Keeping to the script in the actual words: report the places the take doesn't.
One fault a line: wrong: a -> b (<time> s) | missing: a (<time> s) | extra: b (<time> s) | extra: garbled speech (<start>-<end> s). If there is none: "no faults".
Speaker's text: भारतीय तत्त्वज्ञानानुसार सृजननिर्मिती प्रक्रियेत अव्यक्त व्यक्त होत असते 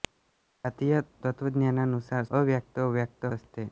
missing: सृजननिर्मिती प्रक्रियेत (2.2 s)
missing: होत (3.2 s)